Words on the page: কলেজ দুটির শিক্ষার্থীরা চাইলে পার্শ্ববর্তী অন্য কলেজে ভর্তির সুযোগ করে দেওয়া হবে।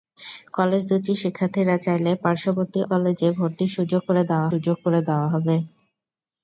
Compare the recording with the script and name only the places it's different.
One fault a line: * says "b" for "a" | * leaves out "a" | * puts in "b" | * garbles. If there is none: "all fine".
* leaves out "অন্য"
* puts in "সুযোগ করে দেওয়া"